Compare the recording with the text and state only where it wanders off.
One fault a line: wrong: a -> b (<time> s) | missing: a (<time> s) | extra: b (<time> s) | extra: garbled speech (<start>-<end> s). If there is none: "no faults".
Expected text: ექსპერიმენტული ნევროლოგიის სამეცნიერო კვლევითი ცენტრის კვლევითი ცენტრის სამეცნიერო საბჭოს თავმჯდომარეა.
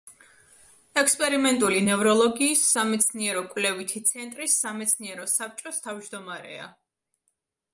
missing: კვლევითი ცენტრის (4.5 s)